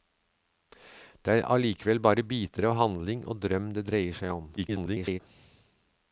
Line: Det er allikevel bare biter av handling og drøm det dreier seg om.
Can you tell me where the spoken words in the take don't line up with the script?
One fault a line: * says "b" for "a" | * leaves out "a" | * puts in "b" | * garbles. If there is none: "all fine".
* garbles